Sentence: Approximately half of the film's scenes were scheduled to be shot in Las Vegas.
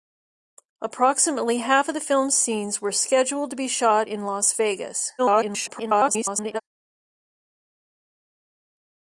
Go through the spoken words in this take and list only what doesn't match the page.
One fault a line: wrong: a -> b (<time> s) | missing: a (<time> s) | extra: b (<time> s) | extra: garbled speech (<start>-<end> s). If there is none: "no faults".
extra: garbled speech (5.2-6.6 s)